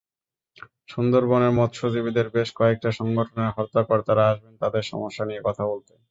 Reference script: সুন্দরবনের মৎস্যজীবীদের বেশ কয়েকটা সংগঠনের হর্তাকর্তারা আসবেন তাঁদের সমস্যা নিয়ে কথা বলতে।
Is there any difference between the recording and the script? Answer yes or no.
no